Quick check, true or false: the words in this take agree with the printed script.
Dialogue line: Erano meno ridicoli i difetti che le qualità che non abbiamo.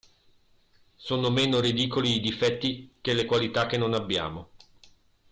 false